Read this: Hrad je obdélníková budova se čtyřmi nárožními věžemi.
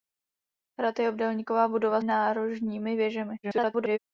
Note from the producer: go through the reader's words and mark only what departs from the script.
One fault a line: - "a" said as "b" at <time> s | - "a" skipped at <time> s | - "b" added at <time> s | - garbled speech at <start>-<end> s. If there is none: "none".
- "se čtyřmi" skipped at 2.0 s
- garbled speech at 3.4-4.0 s